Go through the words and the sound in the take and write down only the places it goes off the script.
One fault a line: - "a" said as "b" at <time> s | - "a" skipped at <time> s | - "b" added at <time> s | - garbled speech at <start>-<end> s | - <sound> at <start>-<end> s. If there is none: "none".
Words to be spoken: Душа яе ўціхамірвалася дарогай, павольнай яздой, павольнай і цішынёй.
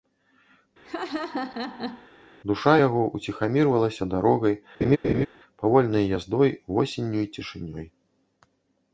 - laugh at 0.8-2.1 s
- "яе" said as "яго" at 2.9 s
- laugh at 4.8-5.3 s
- "павольнай" said as "восенню" at 6.8 s